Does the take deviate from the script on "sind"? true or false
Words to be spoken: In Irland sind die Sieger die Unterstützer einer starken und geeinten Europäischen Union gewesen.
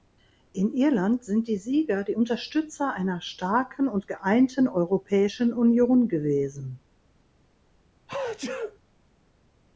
false